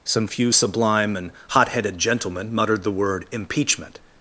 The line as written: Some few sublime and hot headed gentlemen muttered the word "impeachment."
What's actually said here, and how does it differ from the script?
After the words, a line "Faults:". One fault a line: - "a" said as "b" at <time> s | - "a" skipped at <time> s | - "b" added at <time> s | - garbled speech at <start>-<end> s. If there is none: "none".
Some few sublime and hot headed gentlemen muttered the word "impeachment."
Faults:
none